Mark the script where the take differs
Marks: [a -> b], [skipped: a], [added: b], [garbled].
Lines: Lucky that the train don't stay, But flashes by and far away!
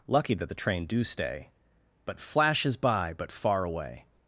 Lucky that the train [don't -> do] stay, But flashes by [and -> but] far away!